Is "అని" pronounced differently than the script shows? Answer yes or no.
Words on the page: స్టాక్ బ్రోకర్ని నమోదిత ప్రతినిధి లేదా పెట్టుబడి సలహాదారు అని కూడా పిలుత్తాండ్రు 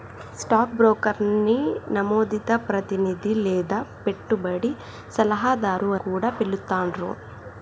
yes